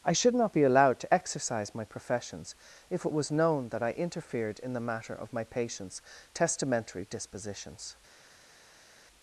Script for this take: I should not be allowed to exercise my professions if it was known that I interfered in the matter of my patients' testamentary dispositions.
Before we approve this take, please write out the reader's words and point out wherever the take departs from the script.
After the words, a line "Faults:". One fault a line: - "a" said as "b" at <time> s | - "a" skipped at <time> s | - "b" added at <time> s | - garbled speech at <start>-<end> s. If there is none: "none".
I should not be allowed to exercise my professions if it was known that I interfered in the matter of my patients' testamentary dispositions.
Faults:
none